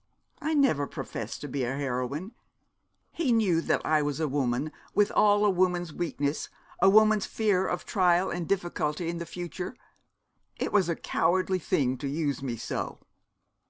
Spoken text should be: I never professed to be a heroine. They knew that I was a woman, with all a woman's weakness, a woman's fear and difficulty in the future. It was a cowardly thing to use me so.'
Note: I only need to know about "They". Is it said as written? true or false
false